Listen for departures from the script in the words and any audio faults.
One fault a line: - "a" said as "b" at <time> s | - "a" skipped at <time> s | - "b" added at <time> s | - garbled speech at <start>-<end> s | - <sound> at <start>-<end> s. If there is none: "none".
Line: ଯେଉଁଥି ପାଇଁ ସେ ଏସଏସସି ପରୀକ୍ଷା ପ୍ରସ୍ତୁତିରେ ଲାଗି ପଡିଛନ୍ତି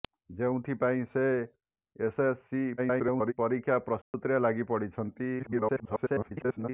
- garbled speech at 2.8-3.3 s
- dropout at 4.0-4.1 s
- garbled speech at 5.4-6.7 s